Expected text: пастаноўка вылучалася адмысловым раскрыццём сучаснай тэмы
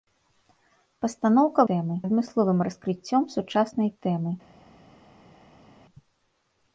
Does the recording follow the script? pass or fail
fail